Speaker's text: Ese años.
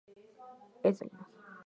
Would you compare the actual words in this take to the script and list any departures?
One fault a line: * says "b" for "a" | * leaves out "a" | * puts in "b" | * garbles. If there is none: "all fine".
all fine